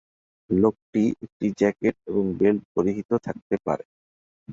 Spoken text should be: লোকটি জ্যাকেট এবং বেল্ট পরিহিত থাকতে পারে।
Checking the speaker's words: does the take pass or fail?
fail